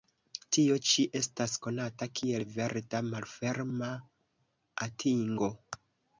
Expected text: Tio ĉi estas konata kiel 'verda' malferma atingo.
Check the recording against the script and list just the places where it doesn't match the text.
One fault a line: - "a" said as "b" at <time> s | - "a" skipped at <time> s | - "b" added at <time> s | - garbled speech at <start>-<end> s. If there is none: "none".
none